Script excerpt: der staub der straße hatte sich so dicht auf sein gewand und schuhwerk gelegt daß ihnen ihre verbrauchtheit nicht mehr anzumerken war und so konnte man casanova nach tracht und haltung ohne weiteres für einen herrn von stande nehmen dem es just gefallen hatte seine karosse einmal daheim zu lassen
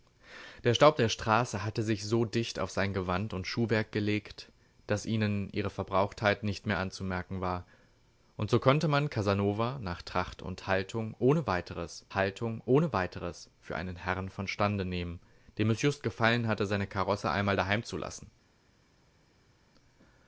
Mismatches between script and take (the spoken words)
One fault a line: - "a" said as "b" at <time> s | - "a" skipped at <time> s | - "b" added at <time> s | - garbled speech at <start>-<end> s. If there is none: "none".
- "haltung ohne weiteres" added at 12.1 s